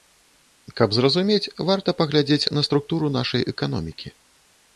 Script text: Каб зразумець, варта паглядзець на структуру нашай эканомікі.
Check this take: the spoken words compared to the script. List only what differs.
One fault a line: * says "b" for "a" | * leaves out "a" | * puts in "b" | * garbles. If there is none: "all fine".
all fine